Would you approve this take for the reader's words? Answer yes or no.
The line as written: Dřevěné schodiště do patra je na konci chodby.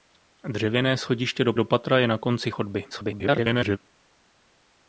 no